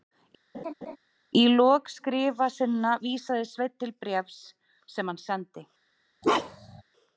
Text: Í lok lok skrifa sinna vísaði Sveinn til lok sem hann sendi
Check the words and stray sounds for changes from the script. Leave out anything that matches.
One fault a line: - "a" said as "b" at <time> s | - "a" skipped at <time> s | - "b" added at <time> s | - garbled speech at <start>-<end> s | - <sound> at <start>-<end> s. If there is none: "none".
- laugh at 0.5-1.0 s
- "lok" skipped at 1.9 s
- "lok" said as "bréfs" at 4.1 s
- bark at 6.2-6.8 s